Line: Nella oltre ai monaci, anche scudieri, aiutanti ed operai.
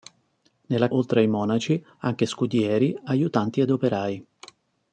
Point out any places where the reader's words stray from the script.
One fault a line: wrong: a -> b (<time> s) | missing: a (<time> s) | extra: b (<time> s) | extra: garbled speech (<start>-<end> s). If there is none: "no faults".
no faults